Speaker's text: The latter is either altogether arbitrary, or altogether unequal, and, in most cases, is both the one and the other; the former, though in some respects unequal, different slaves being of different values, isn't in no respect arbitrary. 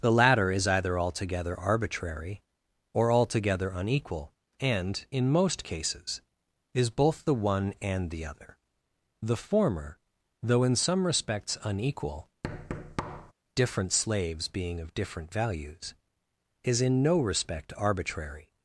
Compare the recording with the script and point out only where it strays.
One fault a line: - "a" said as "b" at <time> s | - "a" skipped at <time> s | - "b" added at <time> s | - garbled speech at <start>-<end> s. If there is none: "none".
- "isn't" said as "is" at 16.6 s